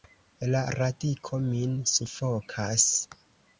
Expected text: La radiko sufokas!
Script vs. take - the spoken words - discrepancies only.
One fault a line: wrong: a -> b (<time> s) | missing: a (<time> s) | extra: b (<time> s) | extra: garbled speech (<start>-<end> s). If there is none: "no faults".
extra: min (1.4 s)